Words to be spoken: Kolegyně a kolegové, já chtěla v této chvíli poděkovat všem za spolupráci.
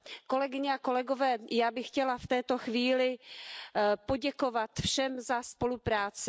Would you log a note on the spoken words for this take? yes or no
yes